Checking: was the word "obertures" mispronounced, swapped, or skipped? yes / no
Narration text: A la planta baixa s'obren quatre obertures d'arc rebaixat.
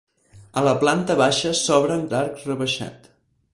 yes